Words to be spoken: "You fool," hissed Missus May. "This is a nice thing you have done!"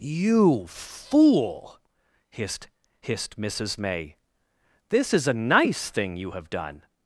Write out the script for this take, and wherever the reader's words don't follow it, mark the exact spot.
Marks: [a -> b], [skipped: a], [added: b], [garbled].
"You fool," hissed [added: hissed] Missus May. "This is a nice thing you have done!"